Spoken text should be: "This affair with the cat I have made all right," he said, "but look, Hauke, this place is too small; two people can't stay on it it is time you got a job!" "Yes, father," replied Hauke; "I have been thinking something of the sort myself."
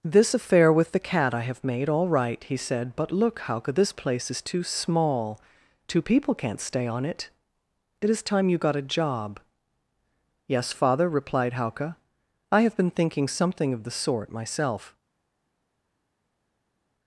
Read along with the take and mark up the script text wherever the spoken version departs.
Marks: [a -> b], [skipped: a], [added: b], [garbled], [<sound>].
"This affair with the cat I have made all right," he said, "but look, Hauke, this place is too small; two people can't stay on it it is time you got a job!" "Yes, father," replied Hauke; "I have been thinking something of the sort myself."